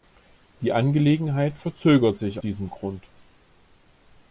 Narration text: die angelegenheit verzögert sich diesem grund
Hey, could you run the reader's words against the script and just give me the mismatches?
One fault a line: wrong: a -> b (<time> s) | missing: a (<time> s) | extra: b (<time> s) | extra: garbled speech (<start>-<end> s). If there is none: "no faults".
no faults